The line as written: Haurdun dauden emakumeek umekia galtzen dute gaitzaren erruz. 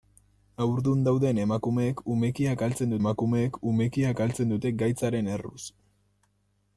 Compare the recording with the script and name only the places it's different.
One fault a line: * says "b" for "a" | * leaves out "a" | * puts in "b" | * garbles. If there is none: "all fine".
* puts in "emakumeek umekia galtzen"